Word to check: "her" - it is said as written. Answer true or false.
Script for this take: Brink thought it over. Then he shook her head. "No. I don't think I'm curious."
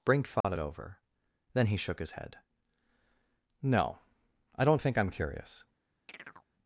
false